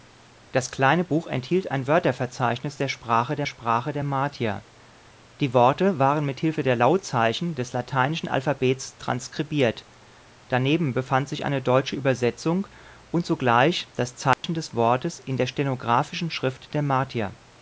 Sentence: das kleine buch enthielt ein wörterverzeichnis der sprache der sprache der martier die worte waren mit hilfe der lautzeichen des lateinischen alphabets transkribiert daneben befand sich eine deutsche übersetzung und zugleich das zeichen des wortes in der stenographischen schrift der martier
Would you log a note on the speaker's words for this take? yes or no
no